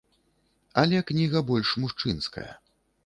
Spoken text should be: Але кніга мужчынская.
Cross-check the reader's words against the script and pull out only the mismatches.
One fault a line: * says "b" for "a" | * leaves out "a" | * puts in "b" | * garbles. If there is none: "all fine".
* puts in "больш"